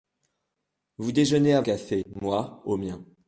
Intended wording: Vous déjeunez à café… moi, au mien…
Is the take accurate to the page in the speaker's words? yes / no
yes